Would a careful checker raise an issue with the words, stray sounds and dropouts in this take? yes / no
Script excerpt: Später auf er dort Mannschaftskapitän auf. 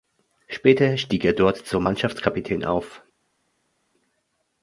yes